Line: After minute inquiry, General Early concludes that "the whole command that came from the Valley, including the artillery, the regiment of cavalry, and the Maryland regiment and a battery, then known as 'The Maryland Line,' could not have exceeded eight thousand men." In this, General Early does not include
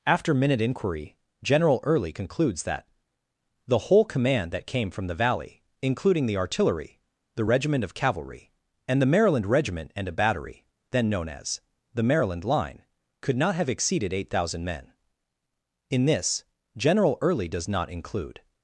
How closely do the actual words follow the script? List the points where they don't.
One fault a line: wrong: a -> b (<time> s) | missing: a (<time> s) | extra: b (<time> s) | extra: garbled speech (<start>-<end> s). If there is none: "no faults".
no faults